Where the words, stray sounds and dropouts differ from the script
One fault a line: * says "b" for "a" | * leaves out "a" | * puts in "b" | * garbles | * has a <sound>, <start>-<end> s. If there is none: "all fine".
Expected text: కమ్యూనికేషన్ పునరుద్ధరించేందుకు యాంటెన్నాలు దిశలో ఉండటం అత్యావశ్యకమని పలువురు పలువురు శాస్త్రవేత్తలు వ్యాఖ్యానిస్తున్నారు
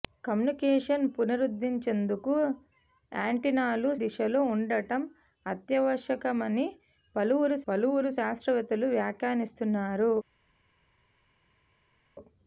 all fine